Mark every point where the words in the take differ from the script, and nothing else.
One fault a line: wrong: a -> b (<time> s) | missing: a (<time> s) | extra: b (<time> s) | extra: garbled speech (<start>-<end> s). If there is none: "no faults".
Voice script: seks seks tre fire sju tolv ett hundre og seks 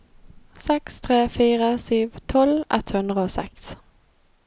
missing: seks (0.9 s)